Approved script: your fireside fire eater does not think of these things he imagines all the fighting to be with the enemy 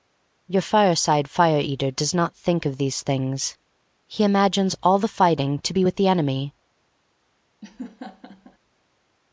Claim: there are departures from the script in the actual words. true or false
false